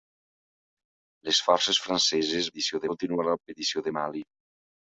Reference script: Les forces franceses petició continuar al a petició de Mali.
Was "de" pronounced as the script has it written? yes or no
yes